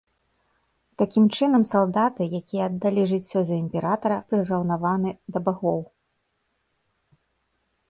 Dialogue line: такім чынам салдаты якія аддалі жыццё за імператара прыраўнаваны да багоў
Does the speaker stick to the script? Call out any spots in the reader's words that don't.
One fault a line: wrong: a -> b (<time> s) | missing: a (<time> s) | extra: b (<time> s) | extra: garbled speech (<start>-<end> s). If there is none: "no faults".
no faults